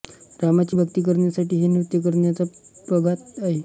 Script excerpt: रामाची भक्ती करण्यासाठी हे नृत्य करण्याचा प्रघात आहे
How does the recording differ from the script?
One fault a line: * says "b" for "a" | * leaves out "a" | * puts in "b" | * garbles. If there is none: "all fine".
all fine